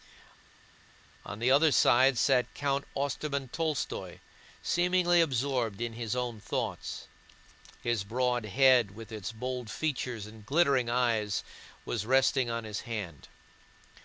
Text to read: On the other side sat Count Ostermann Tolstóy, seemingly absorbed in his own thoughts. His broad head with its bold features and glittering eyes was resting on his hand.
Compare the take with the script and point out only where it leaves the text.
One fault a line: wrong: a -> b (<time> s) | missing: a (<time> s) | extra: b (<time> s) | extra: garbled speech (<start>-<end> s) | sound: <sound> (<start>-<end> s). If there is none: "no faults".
no faults